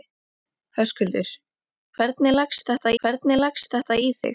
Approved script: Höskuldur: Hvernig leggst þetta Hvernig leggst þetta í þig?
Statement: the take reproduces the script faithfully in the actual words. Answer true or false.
true